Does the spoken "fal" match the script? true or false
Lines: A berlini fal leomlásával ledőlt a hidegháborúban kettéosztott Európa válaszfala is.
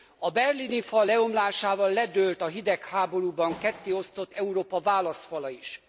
true